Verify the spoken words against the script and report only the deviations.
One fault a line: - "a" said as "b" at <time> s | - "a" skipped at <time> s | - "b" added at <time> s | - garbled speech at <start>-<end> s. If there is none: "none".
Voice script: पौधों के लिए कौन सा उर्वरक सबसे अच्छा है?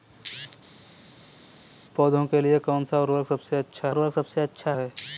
- "उर्वरक सबसे अच्छा" added at 3.9 s